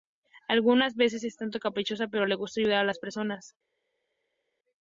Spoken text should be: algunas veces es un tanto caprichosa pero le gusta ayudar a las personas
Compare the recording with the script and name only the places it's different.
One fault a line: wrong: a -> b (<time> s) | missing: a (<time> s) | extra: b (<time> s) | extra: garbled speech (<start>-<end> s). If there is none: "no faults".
no faults